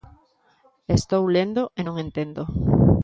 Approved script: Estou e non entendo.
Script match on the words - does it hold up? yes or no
no